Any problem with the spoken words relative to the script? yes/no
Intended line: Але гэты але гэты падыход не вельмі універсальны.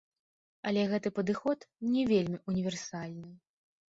yes